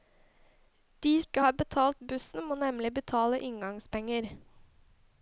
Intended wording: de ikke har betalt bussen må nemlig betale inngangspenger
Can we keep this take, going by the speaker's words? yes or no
yes